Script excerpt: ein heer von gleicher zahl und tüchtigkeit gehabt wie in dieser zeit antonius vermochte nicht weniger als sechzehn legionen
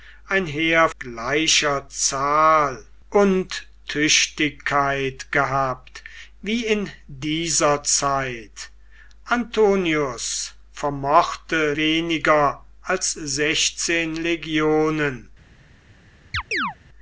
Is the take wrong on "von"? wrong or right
wrong